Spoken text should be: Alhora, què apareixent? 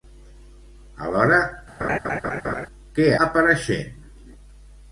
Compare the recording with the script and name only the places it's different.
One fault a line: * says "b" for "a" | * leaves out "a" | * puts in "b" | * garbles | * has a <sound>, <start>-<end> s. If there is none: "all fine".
* has a laugh, 1.8-2.7 s